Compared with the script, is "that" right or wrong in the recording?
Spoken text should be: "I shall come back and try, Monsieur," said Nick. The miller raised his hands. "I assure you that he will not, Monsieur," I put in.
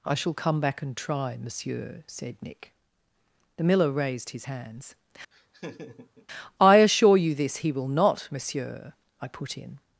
wrong